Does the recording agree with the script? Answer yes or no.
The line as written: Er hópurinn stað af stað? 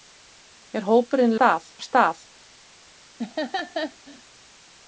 yes